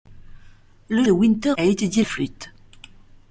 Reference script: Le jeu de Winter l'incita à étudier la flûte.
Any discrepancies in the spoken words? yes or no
yes